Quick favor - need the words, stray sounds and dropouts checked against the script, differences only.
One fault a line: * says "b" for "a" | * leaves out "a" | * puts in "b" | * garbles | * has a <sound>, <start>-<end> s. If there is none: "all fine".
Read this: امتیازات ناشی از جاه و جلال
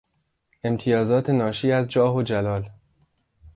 all fine